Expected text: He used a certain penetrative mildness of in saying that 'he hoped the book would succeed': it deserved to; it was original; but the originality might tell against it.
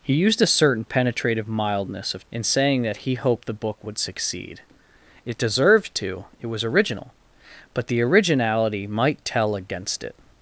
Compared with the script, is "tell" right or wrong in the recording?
right